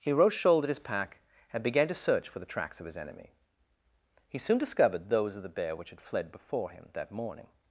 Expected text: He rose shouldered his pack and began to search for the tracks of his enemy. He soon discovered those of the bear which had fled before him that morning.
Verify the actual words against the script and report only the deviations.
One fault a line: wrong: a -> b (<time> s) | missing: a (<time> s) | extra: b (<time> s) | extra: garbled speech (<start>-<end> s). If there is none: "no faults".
no faults